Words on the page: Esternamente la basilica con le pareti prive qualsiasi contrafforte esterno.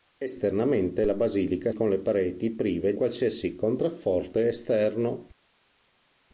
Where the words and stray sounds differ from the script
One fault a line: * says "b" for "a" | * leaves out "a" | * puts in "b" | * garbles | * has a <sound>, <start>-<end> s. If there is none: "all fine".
all fine